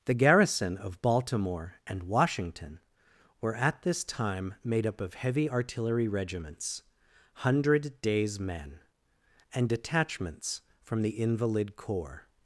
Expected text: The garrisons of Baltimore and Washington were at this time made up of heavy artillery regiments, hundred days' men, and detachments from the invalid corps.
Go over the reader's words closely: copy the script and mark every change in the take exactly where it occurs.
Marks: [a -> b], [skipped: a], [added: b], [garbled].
The [garrisons -> garrison] of Baltimore and Washington were at this time made up of heavy artillery regiments, hundred days' men, and detachments from the invalid corps.